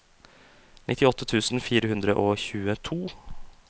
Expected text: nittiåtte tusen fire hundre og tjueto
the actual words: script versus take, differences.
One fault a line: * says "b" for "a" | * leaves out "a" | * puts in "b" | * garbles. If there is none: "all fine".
all fine